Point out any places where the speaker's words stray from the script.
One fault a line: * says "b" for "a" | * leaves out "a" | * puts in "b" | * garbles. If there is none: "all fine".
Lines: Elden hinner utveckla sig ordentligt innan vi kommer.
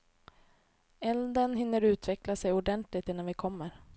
all fine